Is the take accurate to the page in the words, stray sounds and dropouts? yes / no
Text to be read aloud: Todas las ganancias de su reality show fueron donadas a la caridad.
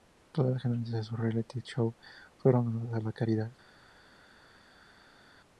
yes